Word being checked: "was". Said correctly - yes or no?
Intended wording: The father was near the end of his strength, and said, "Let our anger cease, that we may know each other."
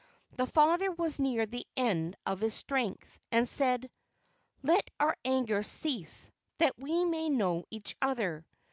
yes